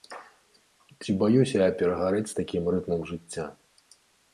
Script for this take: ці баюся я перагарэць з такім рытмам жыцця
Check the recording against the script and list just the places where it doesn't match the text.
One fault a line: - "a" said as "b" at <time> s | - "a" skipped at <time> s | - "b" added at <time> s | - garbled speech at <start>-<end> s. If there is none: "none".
none